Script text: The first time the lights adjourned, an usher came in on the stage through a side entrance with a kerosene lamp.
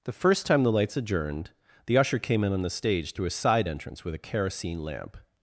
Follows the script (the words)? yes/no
no